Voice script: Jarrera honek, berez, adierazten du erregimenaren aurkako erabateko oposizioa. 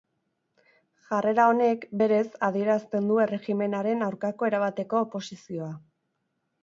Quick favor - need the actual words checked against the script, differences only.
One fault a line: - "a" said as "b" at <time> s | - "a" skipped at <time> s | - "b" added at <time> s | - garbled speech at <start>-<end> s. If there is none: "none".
none